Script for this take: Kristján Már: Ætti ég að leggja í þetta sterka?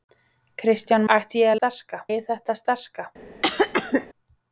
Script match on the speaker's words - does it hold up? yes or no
no